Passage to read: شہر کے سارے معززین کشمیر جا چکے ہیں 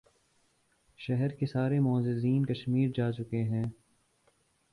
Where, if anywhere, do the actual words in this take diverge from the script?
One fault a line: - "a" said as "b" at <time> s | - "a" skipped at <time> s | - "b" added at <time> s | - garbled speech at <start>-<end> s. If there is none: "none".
none